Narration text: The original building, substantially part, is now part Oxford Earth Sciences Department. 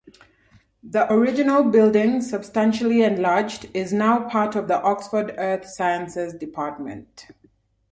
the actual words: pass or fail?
fail